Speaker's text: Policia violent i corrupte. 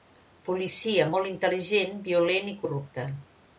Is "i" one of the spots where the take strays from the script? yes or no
no